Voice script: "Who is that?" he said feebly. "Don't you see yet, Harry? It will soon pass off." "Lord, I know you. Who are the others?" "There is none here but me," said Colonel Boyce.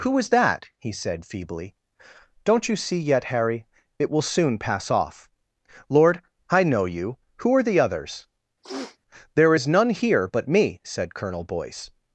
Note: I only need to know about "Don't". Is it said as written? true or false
true